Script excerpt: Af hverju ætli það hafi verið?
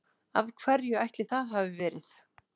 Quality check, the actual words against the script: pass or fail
pass